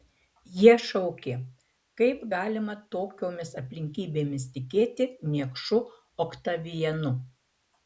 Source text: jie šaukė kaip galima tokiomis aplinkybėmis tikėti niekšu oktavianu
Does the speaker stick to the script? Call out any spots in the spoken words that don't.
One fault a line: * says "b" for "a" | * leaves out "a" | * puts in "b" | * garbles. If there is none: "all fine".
all fine